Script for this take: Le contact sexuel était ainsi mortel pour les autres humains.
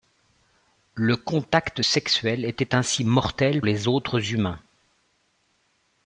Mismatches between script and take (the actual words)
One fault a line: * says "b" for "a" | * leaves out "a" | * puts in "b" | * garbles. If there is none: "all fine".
* leaves out "pour"